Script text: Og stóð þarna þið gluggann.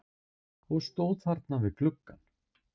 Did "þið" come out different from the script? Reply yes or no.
yes